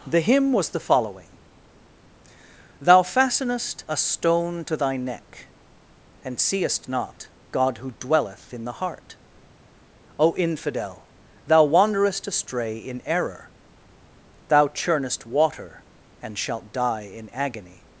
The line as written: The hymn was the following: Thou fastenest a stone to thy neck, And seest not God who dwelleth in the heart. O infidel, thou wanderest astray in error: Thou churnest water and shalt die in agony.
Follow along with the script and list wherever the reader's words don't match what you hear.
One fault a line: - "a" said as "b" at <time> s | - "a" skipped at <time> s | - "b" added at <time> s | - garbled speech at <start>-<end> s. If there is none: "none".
none